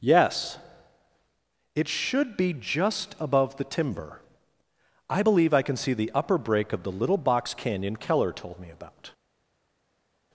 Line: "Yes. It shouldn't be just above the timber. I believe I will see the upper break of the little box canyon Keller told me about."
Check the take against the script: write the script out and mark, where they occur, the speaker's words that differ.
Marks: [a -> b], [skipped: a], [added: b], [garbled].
"Yes. It [shouldn't -> should] be just above the timber. I believe I [will -> can] see the upper break of the little box canyon Keller told me about."